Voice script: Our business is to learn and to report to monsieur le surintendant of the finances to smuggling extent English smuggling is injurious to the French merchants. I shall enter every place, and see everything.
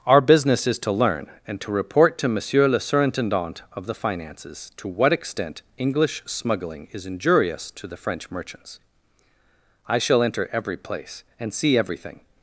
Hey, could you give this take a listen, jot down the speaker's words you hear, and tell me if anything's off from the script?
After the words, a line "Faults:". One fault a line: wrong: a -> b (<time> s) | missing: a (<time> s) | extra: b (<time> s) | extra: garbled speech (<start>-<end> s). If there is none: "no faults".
Our business is to learn and to report to monsieur le surintendant of the finances to what extent English smuggling is injurious to the French merchants. I shall enter every place, and see everything.
Faults:
wrong: smuggling -> what (4.9 s)